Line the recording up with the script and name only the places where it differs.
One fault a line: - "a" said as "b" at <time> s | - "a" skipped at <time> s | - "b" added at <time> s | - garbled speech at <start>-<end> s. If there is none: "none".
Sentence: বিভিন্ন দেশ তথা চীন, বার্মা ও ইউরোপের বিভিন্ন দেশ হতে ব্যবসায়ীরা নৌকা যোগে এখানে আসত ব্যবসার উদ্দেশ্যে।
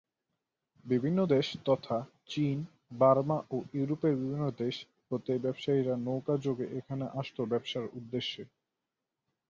none